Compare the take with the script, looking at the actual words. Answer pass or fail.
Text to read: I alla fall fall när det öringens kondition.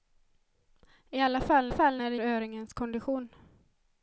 pass